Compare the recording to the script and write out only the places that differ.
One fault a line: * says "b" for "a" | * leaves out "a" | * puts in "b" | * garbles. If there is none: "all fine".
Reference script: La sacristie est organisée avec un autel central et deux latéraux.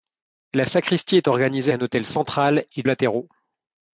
* leaves out "avec"
* leaves out "deux"